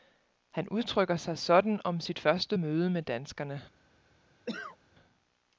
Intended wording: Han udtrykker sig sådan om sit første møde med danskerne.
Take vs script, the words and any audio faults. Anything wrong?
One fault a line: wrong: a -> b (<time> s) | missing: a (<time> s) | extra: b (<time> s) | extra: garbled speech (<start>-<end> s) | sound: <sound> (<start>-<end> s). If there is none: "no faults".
sound: cough (4.5-4.8 s)